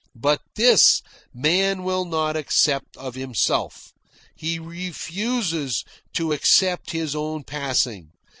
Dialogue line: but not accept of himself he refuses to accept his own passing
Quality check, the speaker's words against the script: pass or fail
fail